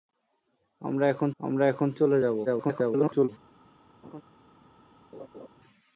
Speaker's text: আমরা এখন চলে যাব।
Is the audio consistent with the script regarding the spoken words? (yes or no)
no